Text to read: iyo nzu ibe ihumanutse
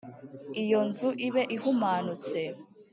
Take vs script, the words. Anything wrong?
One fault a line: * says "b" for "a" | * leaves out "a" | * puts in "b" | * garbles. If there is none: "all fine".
all fine